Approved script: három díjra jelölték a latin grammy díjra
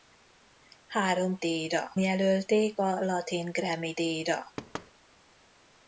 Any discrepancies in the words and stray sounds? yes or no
yes